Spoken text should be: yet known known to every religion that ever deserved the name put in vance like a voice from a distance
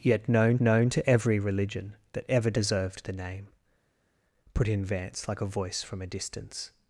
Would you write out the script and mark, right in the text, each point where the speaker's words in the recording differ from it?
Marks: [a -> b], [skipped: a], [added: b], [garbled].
yet known known to every religion that ever deserved the name put in vance like a voice from a distance